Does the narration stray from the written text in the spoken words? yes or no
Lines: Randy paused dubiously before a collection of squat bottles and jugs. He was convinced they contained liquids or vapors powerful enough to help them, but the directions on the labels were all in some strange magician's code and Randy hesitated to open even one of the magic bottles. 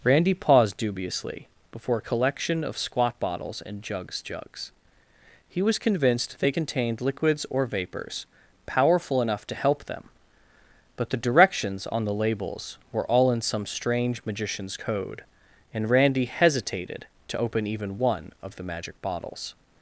yes